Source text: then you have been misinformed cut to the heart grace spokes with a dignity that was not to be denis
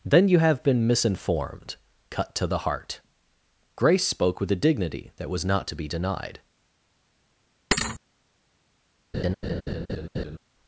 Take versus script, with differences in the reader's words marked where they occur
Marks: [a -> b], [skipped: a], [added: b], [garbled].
then you have been misinformed cut to the heart grace [spokes -> spoke] with a dignity that was not to be [denis -> denied]